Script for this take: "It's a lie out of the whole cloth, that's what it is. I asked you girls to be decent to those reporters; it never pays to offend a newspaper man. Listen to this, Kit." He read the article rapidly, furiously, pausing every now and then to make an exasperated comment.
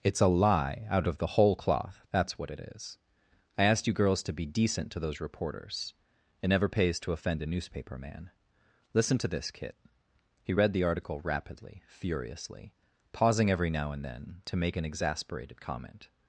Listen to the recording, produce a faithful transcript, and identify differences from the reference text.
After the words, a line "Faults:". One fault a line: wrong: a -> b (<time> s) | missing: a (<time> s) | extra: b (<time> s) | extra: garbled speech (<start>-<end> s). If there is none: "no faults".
"It's a lie out of the whole cloth, that's what it is. I asked you girls to be decent to those reporters; it never pays to offend a newspaper man. Listen to this, Kit." He read the article rapidly, furiously, pausing every now and then to make an exasperated comment.
Faults:
no faults